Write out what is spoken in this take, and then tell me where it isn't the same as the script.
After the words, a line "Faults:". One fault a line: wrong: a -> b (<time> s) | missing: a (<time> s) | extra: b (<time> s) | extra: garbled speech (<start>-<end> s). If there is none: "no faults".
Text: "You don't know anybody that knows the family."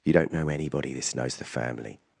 "You don't know anybody this knows the family."
Faults:
wrong: that -> this (0.9 s)